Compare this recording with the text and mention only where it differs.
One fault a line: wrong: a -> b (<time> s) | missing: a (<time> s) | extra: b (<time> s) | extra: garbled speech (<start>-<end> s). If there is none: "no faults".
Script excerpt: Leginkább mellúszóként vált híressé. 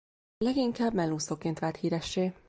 no faults